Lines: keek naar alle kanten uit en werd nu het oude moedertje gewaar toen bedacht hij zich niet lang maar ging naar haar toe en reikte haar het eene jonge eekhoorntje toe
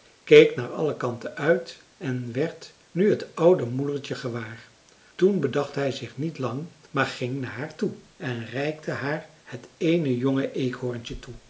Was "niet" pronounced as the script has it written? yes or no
yes